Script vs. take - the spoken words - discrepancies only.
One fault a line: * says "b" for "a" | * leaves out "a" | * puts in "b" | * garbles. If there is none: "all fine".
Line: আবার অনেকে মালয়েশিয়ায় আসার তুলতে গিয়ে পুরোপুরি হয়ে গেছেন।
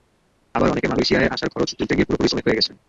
* puts in "খরচ"
* puts in "শ্রমিক"